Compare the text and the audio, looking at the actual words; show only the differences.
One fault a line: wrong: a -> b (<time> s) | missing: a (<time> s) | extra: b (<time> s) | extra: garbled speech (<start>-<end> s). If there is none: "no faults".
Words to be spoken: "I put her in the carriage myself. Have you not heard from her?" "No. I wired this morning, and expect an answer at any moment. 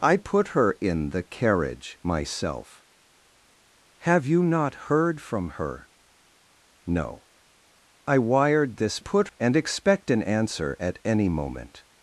wrong: morning -> put (9.0 s)